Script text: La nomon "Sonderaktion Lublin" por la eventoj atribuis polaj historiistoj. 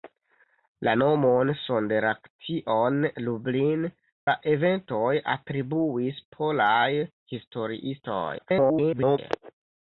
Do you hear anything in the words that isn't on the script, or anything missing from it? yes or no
yes